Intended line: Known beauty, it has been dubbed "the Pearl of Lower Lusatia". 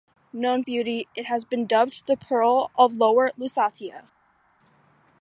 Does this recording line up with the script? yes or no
yes